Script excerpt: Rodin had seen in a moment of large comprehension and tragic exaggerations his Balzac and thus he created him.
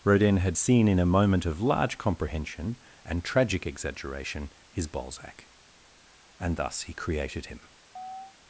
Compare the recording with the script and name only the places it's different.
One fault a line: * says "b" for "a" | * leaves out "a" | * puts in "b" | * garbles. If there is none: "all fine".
* says "exaggeration" for "exaggerations"